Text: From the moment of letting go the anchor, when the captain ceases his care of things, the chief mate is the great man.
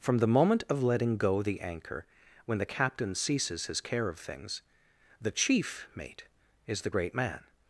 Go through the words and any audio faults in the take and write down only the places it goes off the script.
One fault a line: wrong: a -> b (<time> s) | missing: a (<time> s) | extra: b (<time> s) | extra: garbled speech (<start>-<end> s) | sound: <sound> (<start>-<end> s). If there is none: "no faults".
no faults